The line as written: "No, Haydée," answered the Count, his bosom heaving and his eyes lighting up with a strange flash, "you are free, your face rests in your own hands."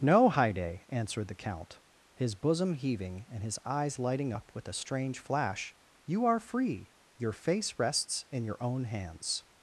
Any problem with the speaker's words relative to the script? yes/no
no